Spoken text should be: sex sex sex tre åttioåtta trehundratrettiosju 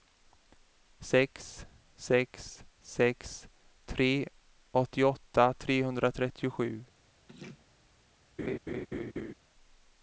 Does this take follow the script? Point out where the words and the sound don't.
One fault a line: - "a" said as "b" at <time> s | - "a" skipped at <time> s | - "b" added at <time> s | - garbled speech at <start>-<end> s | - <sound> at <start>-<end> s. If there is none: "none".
- laugh at 7.3-7.7 s
- laugh at 8.4-9.3 s